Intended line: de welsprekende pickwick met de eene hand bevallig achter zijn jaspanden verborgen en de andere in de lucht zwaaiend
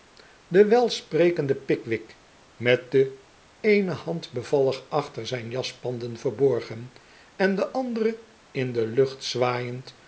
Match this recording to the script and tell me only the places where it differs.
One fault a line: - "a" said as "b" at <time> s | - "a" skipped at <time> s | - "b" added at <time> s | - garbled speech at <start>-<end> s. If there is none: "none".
none